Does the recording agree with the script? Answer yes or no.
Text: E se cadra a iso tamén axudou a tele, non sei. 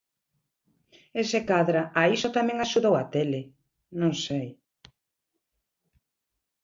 yes